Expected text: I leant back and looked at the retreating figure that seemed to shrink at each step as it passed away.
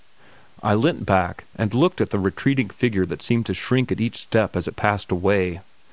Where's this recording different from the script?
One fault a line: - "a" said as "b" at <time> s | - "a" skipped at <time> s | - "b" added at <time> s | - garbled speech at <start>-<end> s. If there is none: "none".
none